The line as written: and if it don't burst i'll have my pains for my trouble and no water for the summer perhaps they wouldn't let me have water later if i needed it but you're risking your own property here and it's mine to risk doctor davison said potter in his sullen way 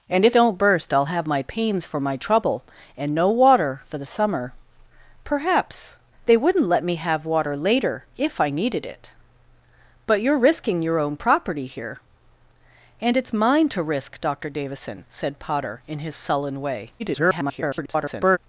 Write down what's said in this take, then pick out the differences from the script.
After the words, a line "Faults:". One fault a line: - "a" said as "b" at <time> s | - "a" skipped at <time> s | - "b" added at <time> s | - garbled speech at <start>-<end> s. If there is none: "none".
and if don't burst i'll have my pains for my trouble and no water for the summer perhaps they wouldn't let me have water later if i needed it but you're risking your own property here and it's mine to risk doctor davison said potter in his sullen way [garbled]
Faults:
- "it" skipped at 0.3 s
- garbled speech at 17.0-18.4 s